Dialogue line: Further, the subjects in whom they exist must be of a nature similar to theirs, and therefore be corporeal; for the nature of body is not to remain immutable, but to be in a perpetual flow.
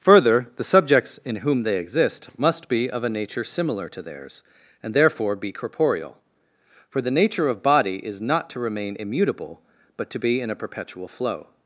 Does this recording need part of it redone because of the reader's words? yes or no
no